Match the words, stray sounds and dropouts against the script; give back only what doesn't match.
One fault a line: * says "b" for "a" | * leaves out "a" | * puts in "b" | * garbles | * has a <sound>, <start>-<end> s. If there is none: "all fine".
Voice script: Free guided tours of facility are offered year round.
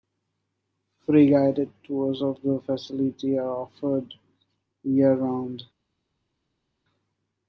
* puts in "the"